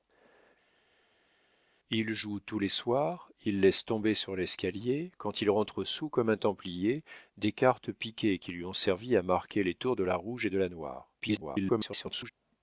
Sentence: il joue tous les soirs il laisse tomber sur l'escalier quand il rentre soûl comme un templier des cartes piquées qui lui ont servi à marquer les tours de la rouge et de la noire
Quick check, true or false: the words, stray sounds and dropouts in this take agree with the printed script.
false